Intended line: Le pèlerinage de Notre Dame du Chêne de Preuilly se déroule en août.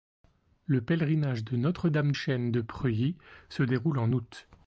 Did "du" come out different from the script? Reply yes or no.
yes